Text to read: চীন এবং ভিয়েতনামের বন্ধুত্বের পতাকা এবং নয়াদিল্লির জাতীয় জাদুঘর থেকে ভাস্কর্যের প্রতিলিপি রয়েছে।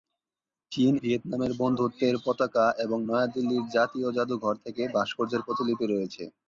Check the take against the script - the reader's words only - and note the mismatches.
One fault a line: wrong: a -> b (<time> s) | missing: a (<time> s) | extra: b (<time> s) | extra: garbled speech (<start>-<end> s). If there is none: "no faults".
missing: এবং (0.9 s)